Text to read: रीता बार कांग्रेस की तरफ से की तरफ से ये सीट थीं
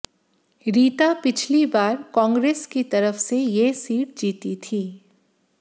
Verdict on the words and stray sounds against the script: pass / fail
fail